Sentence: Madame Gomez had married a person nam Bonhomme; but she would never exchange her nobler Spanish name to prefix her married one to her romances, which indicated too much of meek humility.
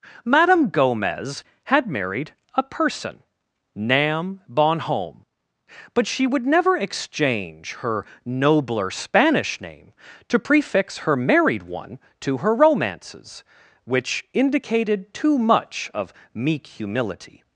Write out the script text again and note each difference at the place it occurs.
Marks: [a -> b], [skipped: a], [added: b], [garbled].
Madame Gomez had married a person nam Bonhomme; but she would never exchange her nobler Spanish name to prefix her married one to her romances, which indicated too much of meek humility.